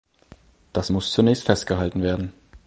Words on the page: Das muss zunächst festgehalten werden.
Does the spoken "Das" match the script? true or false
true